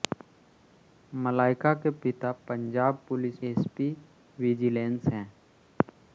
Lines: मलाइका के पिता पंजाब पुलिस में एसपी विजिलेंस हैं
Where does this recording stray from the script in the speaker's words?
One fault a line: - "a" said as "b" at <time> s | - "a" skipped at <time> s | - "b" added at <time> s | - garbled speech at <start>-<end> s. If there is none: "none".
- "में" skipped at 3.5 s